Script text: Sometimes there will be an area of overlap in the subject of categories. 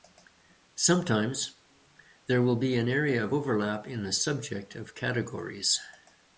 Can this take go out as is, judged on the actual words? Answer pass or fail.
pass